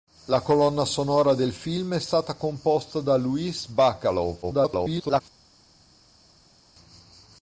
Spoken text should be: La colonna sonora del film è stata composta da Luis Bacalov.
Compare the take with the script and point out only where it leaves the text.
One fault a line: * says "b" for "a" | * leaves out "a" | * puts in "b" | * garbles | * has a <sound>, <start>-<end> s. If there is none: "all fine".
* garbles